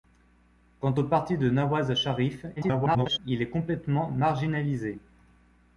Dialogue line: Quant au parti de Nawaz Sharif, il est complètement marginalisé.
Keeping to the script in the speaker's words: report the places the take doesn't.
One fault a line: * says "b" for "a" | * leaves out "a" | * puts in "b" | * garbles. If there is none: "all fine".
* garbles